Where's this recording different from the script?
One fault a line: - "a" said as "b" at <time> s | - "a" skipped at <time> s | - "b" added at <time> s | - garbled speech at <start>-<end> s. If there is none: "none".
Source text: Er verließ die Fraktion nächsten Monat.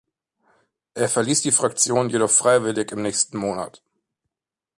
- "jedoch freiwillig im" added at 2.1 s